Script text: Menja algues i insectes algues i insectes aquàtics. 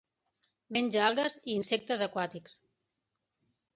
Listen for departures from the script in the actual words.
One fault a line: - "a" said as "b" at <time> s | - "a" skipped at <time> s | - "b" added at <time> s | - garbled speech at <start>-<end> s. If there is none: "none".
- "algues i insectes" skipped at 2.0 s